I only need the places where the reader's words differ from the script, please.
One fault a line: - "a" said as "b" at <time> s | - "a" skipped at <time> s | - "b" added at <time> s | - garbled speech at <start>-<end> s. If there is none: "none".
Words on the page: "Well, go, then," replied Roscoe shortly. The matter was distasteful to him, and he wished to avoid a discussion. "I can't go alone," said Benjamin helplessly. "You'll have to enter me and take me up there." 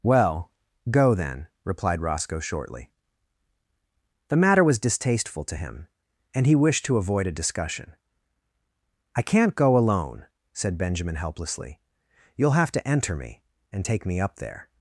none